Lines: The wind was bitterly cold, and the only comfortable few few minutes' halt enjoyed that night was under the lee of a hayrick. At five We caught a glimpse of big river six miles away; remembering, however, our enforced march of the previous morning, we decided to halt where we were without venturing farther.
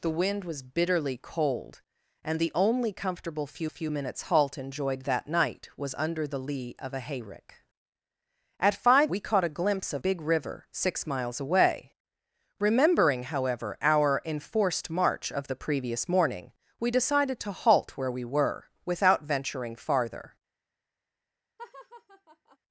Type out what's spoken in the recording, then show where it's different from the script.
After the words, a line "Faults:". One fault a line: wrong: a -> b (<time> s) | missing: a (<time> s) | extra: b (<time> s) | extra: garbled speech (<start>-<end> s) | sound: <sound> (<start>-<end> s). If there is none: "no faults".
The wind was bitterly cold, and the only comfortable few few minutes' halt enjoyed that night was under the lee of a hayrick. At five We caught a glimpse of big river six miles away; remembering, however, our enforced march of the previous morning, we decided to halt where we were without venturing farther.
Faults:
sound: laugh (21.6-22.6 s)